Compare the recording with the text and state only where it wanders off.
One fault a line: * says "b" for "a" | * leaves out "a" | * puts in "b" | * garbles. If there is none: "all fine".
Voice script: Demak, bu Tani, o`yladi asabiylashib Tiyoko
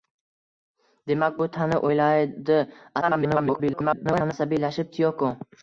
* garbles